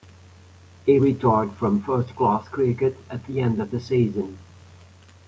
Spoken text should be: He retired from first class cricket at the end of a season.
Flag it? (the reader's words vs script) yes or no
yes